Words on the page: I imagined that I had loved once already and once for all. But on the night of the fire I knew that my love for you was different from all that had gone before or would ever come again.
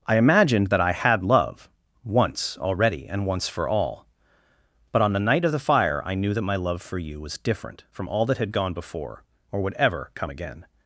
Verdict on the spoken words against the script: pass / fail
fail